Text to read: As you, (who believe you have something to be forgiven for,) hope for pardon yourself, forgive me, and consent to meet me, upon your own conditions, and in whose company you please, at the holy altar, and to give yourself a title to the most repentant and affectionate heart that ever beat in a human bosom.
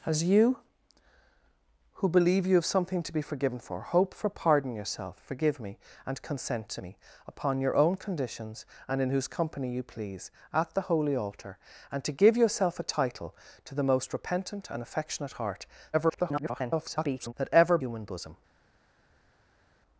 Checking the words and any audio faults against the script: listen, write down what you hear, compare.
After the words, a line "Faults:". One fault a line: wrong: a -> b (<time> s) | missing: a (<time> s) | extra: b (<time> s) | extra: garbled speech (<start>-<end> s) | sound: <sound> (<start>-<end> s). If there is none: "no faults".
As you, (who believe you have something to be forgiven for,) hope for pardon yourself, forgive me, and consent to me, upon your own conditions, and in whose company you please, at the holy altar, and to give yourself a title to the most repentant and affectionate heart [garbled] that ever human bosom.
Faults:
missing: meet (6.8 s)
extra: garbled speech (15.9-17.3 s)
missing: beat in a (17.8 s)